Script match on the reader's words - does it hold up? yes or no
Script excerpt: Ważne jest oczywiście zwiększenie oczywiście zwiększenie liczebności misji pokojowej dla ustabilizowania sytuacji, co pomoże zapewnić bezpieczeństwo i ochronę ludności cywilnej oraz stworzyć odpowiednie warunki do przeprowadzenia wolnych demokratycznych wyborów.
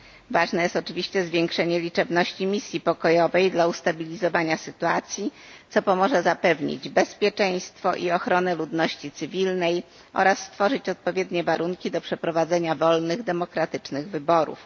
no